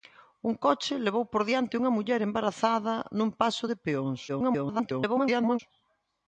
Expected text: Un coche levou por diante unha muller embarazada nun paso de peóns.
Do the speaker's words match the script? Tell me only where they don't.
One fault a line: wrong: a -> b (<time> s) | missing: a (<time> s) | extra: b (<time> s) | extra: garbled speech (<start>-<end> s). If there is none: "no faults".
extra: garbled speech (4.3-5.6 s)